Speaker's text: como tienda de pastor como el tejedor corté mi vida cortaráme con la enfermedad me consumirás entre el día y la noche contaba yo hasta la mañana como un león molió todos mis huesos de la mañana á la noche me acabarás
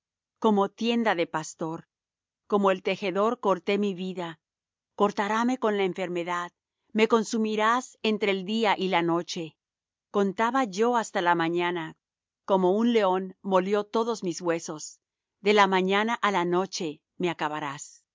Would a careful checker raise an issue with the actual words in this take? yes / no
no